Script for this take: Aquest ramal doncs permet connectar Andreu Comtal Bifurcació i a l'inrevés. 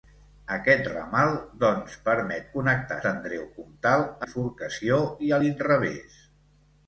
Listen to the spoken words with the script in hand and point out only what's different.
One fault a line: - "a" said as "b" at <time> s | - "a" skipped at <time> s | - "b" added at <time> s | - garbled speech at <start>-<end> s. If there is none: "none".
none